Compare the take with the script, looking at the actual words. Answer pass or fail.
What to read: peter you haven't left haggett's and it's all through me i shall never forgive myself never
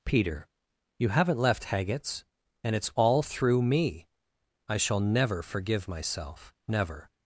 pass